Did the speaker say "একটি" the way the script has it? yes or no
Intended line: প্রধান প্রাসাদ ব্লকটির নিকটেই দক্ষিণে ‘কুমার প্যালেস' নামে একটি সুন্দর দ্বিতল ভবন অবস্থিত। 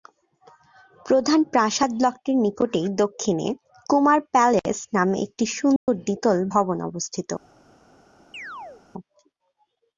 yes